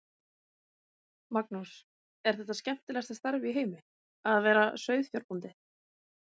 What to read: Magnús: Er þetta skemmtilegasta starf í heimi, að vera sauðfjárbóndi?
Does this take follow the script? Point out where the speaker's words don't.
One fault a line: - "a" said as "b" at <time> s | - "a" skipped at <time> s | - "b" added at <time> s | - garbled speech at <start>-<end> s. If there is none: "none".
none